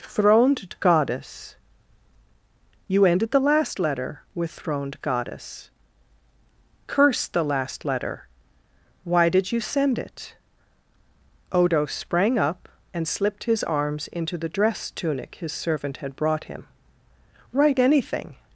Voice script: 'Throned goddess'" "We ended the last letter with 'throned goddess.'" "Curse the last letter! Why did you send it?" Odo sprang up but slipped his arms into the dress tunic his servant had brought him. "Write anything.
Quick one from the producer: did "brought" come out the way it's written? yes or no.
yes